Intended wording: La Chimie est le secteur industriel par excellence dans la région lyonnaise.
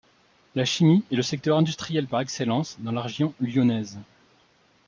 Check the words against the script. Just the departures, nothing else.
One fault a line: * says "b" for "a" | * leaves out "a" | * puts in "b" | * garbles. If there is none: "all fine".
all fine